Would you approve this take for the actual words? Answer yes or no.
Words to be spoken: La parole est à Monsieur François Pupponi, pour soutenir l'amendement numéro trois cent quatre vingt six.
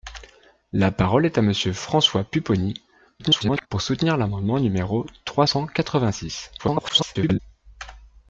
no